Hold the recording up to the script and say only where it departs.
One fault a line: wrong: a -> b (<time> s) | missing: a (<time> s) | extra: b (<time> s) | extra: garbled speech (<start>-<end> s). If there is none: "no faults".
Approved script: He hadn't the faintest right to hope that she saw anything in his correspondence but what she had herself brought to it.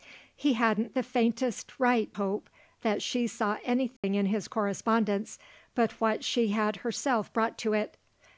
missing: to (2.2 s)